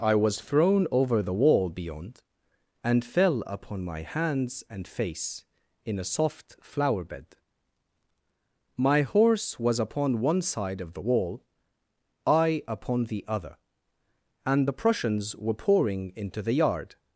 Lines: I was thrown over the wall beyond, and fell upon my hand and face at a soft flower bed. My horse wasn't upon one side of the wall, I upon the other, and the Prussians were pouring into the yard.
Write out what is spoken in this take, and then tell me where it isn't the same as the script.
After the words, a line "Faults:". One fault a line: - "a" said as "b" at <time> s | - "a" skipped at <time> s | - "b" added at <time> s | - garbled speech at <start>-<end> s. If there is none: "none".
I was thrown over the wall beyond, and fell upon my hands and face in a soft flower bed. My horse was upon one side of the wall, I upon the other, and the Prussians were pouring into the yard.
Faults:
- "hand" said as "hands" at 4.0 s
- "at" said as "in" at 5.8 s
- "wasn't" said as "was" at 9.6 s